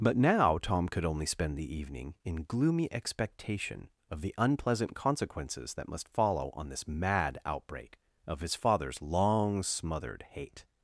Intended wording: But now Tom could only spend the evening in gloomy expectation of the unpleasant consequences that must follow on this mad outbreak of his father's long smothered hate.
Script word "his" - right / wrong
right